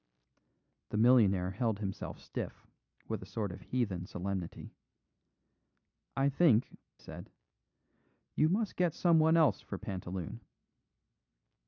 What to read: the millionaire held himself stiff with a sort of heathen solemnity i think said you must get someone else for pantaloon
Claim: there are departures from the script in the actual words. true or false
false